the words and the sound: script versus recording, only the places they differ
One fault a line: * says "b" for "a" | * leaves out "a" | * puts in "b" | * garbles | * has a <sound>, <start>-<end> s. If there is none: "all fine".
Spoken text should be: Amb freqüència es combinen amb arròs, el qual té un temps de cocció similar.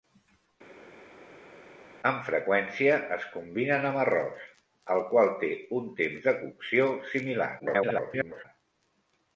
* garbles